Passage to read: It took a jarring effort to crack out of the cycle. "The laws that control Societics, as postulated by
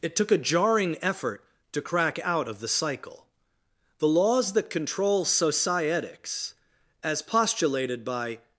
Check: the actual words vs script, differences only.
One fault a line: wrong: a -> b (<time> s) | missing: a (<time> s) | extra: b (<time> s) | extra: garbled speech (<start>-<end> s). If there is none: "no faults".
no faults